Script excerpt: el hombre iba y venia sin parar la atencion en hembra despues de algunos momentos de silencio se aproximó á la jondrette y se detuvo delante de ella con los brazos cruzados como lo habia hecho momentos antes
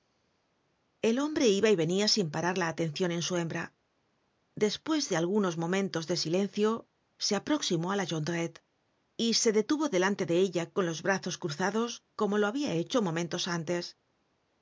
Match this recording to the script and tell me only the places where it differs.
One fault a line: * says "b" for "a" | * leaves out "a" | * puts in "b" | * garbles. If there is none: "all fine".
* puts in "su"